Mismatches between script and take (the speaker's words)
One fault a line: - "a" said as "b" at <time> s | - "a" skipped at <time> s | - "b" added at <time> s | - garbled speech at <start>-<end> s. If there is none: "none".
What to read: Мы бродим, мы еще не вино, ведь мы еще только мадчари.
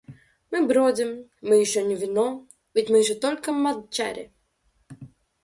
none